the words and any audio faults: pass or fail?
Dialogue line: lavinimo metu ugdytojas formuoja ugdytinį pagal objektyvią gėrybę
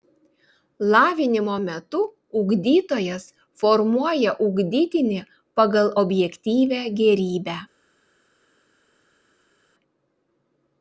pass